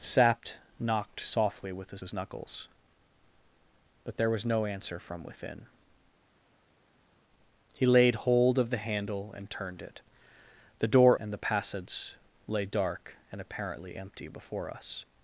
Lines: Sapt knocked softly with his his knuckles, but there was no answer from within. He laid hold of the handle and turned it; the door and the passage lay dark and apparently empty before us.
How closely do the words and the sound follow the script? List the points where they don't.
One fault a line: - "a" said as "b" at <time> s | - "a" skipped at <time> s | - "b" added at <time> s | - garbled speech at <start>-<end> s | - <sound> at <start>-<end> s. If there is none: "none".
none